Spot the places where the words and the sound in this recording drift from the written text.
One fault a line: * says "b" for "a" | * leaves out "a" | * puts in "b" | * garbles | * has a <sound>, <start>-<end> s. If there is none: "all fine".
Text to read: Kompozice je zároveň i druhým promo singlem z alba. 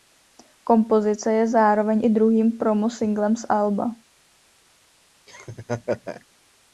* has a laugh, 5.3-6.3 s